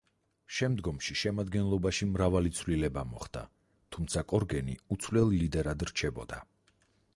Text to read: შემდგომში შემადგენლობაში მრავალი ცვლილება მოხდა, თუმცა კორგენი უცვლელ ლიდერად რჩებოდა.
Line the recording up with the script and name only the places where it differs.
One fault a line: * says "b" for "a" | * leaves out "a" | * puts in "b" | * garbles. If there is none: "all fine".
all fine